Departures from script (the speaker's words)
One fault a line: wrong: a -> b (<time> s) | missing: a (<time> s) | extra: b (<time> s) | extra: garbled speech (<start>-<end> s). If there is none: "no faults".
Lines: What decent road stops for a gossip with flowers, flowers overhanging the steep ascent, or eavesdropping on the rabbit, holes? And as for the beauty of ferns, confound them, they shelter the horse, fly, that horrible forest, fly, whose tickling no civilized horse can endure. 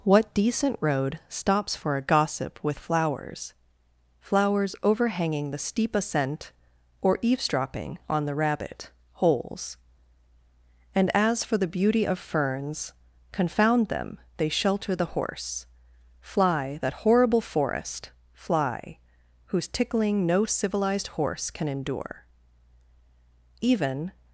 extra: Even (23.6 s)